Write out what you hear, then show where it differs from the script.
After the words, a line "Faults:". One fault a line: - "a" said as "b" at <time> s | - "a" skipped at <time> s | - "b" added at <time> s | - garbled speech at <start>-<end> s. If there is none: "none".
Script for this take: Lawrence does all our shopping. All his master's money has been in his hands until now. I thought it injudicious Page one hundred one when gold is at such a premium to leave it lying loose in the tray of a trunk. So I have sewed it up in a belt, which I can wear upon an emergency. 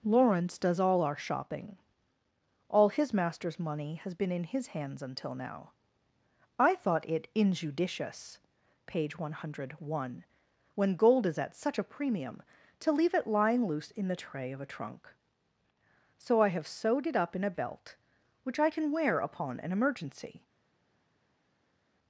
Lawrence does all our shopping. All his master's money has been in his hands until now. I thought it injudicious Page one hundred one when gold is at such a premium to leave it lying loose in the tray of a trunk. So I have sewed it up in a belt, which I can wear upon an emergency.
Faults:
none